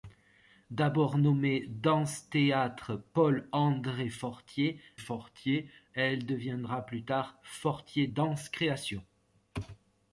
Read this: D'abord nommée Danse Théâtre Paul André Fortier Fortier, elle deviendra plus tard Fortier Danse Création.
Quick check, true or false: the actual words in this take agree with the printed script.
true